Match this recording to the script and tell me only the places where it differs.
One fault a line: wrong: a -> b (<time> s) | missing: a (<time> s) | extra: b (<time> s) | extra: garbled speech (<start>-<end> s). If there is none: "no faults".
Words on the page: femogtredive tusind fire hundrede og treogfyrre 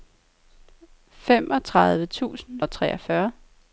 missing: fire hundrede (2.6 s)